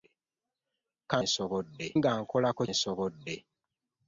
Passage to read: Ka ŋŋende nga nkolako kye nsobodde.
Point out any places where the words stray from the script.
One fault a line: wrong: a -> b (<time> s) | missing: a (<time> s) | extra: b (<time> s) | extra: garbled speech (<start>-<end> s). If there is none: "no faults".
wrong: ŋŋende -> nsobodde (1.2 s)
missing: kye (2.6 s)